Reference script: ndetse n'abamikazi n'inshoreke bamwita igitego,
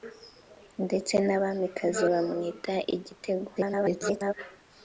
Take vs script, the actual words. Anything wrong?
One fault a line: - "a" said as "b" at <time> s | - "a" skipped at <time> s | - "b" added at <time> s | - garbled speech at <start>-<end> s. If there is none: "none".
- "n'inshoreke" skipped at 2.0 s
- garbled speech at 3.5-4.3 s